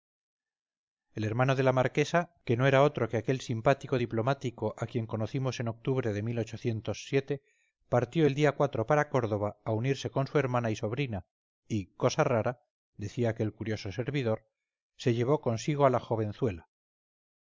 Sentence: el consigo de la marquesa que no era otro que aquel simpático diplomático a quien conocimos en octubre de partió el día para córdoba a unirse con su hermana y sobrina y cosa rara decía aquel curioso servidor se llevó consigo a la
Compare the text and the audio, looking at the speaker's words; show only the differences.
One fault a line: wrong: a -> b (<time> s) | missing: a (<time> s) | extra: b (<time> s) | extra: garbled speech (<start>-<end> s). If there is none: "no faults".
wrong: consigo -> hermano (1.2 s)